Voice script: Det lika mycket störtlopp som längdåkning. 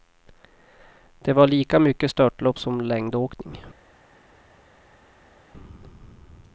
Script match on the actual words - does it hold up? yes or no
no